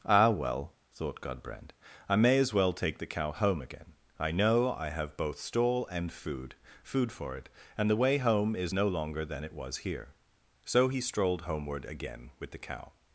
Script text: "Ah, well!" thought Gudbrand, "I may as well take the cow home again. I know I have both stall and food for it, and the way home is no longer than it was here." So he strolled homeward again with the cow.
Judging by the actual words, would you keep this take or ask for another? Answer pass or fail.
fail